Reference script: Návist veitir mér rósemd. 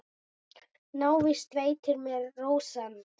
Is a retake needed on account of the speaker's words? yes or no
no